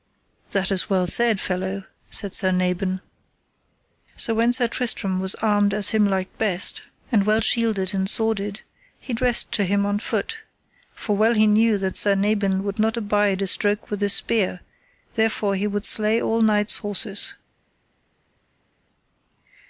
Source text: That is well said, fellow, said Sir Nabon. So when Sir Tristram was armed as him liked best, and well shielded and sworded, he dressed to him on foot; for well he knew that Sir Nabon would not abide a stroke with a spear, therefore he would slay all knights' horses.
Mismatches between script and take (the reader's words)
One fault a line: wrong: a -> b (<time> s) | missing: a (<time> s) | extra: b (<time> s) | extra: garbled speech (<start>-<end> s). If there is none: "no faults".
no faults